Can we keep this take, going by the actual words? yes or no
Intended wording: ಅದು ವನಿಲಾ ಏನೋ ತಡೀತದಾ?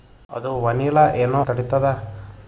yes